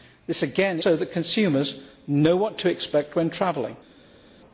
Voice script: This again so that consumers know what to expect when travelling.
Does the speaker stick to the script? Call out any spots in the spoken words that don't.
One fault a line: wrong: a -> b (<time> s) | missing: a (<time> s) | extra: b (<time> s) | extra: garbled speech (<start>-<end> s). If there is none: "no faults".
no faults